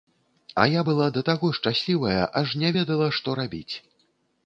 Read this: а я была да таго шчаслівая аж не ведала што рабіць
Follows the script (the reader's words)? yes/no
yes